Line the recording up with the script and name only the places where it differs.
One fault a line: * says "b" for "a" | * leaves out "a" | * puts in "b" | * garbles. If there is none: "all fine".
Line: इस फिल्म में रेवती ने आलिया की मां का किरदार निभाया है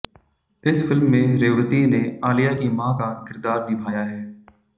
all fine